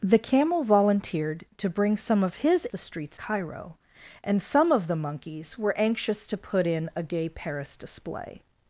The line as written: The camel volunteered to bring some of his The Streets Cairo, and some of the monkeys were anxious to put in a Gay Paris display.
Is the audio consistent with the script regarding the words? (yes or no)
yes